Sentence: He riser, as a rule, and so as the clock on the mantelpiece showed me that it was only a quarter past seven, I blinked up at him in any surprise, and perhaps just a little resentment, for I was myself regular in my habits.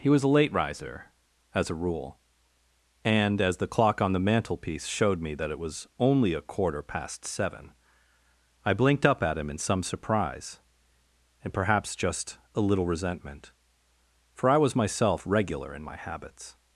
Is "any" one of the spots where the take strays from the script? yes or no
yes